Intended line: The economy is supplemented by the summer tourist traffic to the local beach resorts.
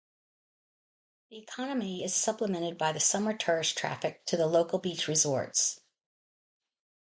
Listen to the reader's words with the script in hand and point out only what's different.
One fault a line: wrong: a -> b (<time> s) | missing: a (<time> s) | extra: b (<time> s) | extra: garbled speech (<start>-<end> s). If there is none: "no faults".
no faults